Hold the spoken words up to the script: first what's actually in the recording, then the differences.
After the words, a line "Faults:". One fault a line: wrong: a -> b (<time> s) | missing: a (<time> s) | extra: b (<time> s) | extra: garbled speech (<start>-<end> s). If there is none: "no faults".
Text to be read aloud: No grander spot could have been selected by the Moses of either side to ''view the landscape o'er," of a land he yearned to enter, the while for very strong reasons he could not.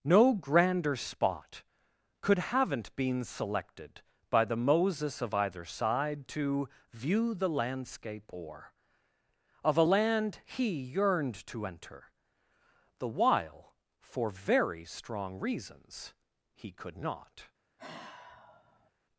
No grander spot could haven't been selected by the Moses of either side to ''view the landscape o'er," of a land he yearned to enter, the while for very strong reasons he could not.
Faults:
wrong: have -> haven't (2.4 s)